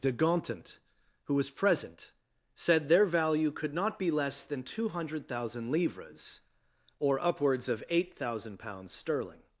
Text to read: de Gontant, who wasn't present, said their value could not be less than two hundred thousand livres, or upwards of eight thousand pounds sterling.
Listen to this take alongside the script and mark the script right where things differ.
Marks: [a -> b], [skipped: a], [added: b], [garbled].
de Gontant, who [wasn't -> was] present, said their value could not be less than two hundred thousand livres, or upwards of eight thousand pounds sterling.